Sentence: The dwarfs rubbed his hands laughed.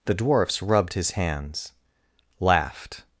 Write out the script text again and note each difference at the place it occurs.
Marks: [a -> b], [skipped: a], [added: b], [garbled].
The dwarfs rubbed his hands laughed.